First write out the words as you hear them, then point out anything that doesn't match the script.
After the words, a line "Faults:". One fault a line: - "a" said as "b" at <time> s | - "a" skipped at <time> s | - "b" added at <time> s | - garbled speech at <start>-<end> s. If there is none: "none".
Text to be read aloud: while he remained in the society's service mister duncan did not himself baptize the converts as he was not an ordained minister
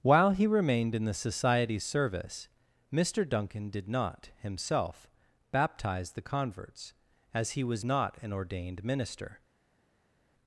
while he remained in the society's service mister duncan did not himself baptize the converts as he was not an ordained minister
Faults:
none